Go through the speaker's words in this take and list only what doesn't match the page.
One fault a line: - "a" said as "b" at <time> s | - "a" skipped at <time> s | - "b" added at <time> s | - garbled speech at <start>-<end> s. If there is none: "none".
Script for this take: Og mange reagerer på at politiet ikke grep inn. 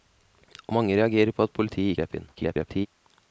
- "ikke" skipped at 2.0 s
- garbled speech at 2.3-2.9 s